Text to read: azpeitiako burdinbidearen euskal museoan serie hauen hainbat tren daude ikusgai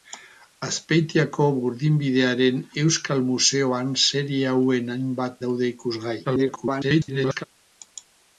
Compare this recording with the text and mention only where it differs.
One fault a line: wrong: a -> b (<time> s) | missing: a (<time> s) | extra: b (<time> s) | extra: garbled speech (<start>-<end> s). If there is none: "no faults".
missing: tren (5.4 s)
extra: garbled speech (6.2-7.4 s)